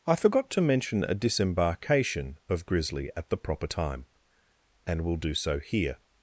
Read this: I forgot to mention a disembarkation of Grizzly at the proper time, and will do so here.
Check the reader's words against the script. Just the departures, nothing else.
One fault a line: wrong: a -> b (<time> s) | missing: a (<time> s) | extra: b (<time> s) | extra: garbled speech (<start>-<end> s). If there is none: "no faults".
no faults